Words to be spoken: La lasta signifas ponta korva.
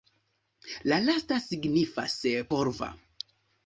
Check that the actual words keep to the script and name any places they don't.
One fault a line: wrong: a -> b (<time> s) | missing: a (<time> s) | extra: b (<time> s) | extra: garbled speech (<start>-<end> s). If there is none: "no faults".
missing: ponta (2.2 s)